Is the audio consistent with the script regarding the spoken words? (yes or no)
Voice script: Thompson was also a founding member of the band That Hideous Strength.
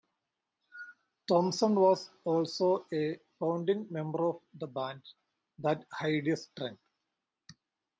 yes